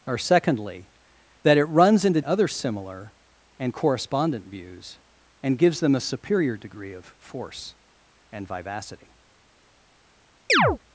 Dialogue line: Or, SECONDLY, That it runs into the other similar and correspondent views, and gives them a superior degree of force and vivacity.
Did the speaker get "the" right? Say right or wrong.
wrong